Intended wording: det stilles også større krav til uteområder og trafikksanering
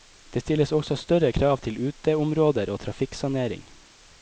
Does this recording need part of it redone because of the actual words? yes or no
no